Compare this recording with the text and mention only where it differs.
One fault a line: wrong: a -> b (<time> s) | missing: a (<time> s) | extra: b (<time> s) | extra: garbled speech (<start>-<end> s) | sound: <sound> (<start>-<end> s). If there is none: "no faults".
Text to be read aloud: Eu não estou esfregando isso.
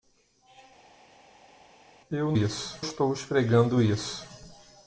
wrong: não -> isso (2.3 s)